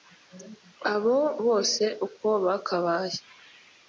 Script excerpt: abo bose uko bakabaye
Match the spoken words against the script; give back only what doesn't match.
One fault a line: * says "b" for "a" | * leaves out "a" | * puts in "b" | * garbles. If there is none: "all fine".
all fine